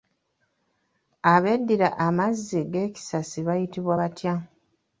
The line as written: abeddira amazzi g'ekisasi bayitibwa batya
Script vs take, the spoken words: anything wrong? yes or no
no